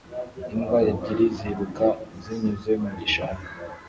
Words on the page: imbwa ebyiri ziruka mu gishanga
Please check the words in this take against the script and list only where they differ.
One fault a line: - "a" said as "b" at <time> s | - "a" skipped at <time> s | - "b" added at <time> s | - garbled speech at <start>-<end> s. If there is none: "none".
- "zinyuze" added at 2.2 s